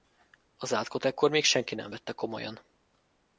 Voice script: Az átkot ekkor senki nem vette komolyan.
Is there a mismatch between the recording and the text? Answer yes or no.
yes